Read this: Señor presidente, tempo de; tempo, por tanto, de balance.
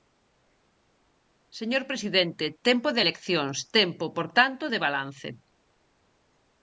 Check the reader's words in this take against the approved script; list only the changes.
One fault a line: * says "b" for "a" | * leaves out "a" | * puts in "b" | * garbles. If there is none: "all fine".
* puts in "eleccións"